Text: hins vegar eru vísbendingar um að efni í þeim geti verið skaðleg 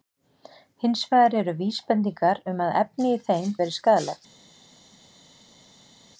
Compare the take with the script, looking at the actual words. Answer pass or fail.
fail